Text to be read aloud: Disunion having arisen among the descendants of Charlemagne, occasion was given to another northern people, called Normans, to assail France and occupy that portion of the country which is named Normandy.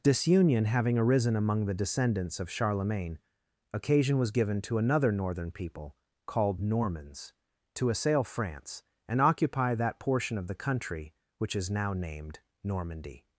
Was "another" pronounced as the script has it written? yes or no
yes